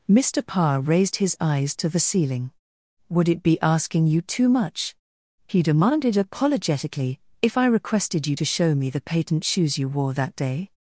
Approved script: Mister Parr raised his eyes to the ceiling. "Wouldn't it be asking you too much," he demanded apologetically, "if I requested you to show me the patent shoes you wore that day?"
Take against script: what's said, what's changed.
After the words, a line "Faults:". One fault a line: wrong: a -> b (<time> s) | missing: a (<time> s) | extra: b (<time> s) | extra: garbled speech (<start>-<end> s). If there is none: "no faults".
Mister Parr raised his eyes to the ceiling. "Would it be asking you too much," he demanded apologetically, "if I requested you to show me the patent shoes you wore that day?"
Faults:
wrong: Wouldn't -> Would (3.1 s)